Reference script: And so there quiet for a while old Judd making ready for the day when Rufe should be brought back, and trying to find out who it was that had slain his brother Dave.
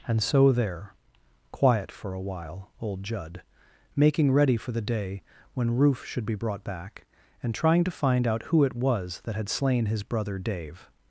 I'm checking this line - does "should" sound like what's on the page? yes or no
yes